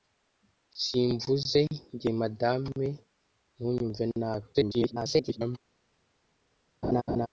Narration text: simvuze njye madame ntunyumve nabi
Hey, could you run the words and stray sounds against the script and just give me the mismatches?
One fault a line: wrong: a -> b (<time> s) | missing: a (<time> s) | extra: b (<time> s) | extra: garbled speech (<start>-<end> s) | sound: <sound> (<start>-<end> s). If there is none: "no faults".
extra: garbled speech (4.5-5.6 s)
sound: laugh (6.8-7.3 s)